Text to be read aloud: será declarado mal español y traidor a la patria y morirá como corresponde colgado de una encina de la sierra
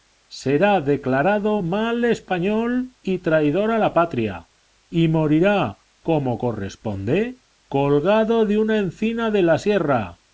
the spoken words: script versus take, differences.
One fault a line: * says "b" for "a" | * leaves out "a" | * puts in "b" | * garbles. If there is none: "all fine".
all fine